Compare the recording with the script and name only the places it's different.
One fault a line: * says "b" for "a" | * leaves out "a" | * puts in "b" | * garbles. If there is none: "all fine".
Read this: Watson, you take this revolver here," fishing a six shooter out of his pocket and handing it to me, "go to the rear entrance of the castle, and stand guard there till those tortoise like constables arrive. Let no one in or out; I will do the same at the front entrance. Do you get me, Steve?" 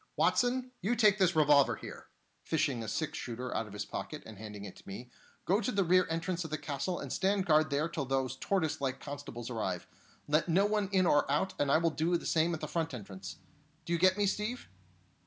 * puts in "and"